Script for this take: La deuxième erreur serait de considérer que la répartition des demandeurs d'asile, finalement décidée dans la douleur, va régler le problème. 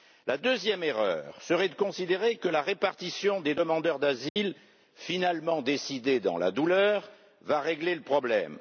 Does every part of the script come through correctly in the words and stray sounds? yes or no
no